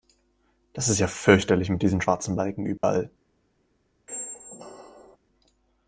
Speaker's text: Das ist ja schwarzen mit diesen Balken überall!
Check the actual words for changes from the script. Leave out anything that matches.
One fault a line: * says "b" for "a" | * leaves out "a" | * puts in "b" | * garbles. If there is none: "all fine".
* says "fürchterlich" for "schwarzen"
* puts in "schwarzen"